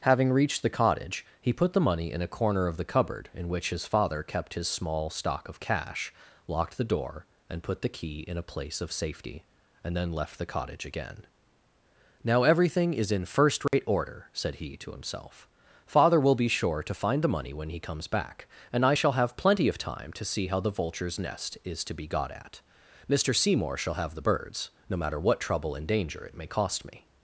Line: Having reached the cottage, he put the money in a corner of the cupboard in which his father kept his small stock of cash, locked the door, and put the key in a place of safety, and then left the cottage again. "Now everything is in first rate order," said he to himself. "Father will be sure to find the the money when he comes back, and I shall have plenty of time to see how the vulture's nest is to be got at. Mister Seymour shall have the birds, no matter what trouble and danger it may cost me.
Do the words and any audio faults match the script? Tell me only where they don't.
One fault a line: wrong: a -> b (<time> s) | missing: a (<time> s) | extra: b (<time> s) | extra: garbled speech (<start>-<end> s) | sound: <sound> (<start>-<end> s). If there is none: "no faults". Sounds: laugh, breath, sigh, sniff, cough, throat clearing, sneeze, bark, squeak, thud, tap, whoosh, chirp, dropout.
sound: dropout (13.7-13.7 s)
missing: the (17.4 s)